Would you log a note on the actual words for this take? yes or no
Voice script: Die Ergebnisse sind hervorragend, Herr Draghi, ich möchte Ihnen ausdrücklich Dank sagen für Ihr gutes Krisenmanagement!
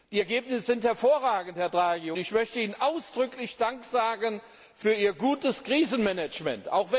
no